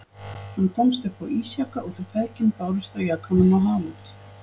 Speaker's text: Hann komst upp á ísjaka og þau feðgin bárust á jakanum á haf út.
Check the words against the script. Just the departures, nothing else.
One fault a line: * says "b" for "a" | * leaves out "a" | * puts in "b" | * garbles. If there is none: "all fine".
all fine